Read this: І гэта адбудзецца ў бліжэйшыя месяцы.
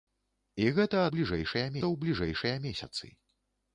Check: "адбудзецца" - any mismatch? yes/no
yes